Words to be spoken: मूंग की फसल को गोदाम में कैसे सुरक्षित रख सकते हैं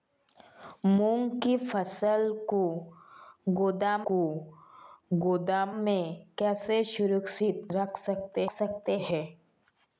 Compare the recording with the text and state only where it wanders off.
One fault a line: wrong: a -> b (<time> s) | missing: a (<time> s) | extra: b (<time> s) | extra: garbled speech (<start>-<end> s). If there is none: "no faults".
extra: को गोदाम (4.1 s)
extra: सकते (8.5 s)